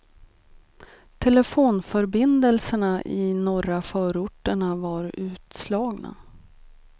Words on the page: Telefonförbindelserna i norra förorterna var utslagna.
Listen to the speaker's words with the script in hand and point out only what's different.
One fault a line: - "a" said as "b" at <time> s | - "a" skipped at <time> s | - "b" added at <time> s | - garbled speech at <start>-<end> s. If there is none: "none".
none